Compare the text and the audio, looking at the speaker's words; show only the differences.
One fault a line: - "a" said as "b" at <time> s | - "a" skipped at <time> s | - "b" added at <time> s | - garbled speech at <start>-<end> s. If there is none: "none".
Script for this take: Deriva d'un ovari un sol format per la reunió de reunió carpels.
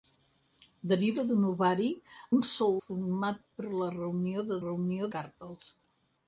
none